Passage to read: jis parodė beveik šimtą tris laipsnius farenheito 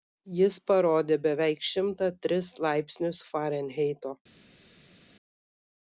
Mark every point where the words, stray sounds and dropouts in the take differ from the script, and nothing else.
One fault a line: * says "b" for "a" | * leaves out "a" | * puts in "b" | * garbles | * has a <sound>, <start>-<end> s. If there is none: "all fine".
all fine